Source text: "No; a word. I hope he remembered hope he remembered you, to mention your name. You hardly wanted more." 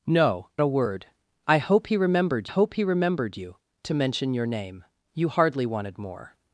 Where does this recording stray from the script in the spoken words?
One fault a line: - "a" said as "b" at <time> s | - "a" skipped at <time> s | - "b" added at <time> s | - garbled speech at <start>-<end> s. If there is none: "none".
none